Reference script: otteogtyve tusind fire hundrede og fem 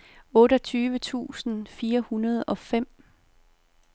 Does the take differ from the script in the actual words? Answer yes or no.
no